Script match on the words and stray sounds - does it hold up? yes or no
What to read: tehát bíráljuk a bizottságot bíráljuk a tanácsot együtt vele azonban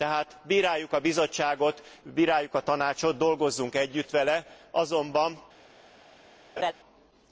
no